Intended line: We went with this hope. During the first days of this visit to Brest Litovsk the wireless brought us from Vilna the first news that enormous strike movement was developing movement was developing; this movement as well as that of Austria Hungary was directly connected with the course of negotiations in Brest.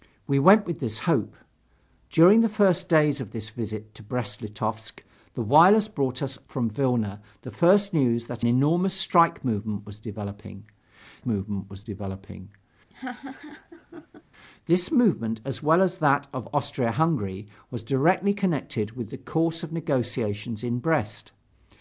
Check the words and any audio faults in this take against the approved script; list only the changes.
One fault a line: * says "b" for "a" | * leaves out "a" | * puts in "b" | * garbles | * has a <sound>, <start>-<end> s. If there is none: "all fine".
* has a laugh, 12.9-14.2 s